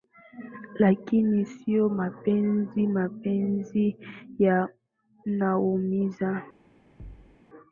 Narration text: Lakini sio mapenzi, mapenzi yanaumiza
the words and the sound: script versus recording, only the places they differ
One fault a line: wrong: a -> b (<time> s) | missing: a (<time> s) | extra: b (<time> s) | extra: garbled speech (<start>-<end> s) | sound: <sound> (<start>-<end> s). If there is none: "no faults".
sound: thud (7.0-7.4 s)